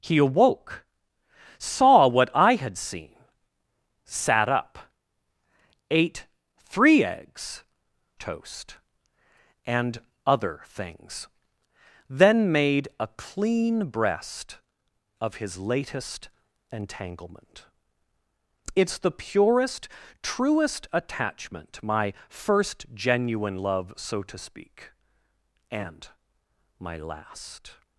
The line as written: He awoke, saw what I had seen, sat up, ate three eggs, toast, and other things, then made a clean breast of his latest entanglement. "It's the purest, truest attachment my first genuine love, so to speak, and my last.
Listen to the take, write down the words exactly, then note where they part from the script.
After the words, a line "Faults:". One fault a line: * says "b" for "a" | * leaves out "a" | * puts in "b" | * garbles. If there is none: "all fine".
He awoke, saw what I had seen, sat up, ate three eggs, toast, and other things, then made a clean breast of his latest entanglement. "It's the purest, truest attachment my first genuine love, so to speak, and my last.
Faults:
all fine